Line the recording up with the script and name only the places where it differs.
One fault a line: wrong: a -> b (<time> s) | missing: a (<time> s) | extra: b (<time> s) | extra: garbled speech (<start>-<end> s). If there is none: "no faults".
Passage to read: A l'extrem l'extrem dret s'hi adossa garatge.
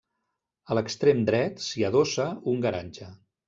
missing: l'extrem (1.2 s)
extra: un (2.5 s)